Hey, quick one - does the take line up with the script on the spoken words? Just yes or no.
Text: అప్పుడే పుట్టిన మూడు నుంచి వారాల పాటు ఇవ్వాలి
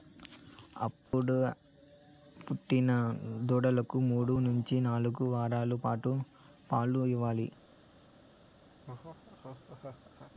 no